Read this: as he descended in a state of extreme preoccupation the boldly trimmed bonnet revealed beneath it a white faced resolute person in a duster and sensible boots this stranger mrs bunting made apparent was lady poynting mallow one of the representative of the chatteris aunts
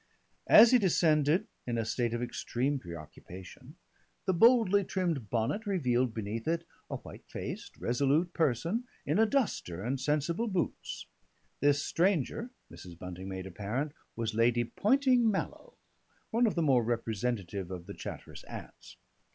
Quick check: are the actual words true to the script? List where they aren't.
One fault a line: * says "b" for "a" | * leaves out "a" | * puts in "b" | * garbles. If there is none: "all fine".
* puts in "more"